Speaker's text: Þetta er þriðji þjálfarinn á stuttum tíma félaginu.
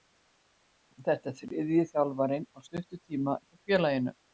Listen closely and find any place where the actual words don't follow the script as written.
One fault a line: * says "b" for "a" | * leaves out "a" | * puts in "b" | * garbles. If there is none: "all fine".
* puts in "hjá"